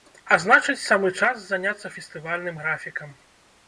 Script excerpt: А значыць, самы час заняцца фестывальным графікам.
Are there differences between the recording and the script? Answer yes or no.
no